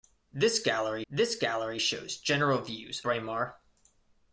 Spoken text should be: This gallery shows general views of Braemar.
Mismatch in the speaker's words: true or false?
true